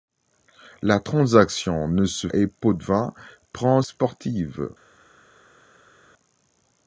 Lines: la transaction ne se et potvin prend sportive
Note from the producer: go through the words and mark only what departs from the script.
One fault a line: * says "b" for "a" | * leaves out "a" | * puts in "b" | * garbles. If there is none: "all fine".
all fine